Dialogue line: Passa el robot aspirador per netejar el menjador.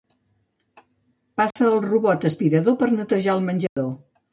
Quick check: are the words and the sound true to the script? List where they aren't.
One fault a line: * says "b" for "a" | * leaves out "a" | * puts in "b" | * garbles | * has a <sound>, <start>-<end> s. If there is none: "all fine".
* has a dropout, 1.5-1.6 s
* has a dropout, 3.7-3.8 s